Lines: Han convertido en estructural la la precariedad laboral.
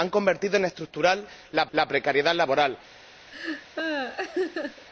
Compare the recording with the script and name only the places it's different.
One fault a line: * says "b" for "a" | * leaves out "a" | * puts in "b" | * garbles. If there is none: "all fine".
all fine